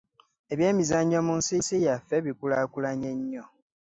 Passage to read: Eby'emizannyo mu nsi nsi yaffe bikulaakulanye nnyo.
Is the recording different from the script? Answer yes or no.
no